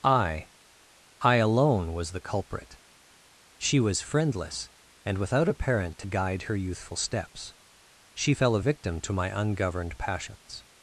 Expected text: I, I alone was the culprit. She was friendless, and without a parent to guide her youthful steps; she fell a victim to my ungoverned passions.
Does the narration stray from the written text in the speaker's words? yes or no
no